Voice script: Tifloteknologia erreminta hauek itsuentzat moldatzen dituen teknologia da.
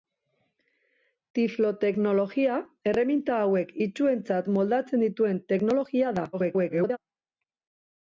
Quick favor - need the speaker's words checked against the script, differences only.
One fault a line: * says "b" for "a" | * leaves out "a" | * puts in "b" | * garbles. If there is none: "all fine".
* garbles